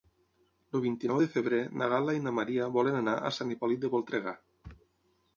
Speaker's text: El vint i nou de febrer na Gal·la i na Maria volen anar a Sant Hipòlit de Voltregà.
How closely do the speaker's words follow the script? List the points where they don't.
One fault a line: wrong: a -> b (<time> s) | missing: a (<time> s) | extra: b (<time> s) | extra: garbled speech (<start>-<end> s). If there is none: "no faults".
no faults